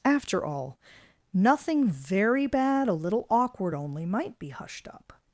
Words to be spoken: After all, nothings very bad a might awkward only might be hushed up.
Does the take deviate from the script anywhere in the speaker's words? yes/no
yes